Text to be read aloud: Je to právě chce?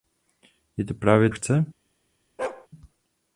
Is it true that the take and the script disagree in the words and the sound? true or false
true